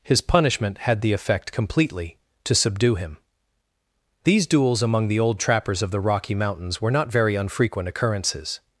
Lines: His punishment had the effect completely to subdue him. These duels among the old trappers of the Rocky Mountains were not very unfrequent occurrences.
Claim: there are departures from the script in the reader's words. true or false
false